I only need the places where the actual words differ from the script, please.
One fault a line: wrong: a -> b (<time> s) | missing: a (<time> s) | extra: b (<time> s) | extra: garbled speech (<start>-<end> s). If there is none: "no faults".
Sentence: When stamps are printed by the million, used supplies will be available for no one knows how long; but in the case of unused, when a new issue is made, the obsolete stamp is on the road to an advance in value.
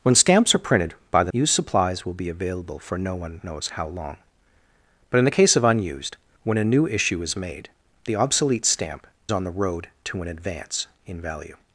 missing: million (1.3 s)
missing: is (9.1 s)